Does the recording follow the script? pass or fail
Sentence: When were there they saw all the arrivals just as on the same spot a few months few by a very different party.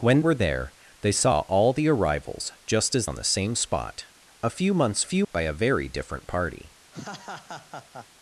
pass